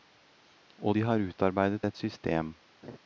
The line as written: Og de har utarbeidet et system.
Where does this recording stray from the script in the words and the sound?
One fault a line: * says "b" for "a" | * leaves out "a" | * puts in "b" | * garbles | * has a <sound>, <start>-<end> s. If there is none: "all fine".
* has a laugh, 2.8-3.0 s